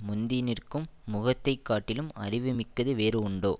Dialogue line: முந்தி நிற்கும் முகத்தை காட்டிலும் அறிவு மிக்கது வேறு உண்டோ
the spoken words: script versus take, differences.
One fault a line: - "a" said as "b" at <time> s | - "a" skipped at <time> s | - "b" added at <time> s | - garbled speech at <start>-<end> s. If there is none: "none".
none